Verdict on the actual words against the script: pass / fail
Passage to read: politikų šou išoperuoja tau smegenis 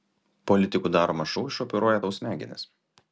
fail